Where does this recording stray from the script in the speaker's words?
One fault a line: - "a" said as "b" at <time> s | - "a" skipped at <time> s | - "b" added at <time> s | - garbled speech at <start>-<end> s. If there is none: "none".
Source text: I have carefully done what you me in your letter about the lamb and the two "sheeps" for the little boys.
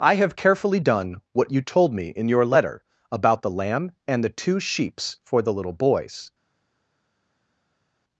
- "told" added at 1.6 s